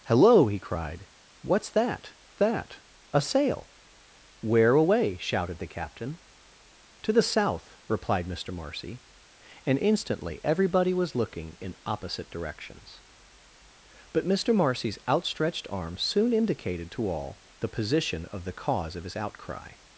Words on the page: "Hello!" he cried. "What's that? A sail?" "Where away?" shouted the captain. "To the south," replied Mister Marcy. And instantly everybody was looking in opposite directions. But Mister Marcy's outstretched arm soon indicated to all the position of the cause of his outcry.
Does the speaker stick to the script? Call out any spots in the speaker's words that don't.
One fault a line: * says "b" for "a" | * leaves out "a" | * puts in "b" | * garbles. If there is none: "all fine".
* puts in "that"